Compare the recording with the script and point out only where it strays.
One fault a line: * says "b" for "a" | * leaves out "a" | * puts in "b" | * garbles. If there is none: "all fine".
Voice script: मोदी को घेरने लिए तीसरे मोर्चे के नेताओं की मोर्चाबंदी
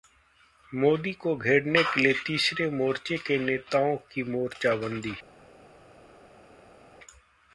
* puts in "के"